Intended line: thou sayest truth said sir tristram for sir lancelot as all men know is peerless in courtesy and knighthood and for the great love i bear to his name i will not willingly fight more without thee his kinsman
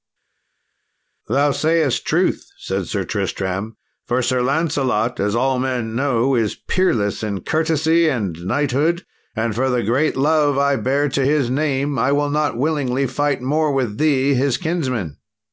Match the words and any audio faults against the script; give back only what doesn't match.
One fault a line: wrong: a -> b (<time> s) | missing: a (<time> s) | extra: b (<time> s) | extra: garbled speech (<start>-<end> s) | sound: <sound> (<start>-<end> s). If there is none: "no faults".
wrong: without -> with (13.7 s)